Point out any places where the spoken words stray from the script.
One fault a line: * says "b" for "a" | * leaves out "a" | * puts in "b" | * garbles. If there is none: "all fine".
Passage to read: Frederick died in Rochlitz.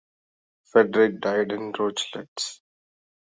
all fine